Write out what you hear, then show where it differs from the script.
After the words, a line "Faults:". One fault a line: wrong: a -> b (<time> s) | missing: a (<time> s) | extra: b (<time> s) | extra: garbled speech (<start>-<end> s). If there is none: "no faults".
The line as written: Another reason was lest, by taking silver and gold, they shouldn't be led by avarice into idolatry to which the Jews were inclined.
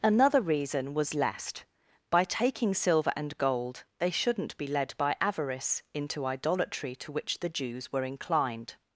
Another reason was lest, by taking silver and gold, they shouldn't be led by avarice into idolatry to which the Jews were inclined.
Faults:
no faults